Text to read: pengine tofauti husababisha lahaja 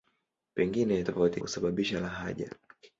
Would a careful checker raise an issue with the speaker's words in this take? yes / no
no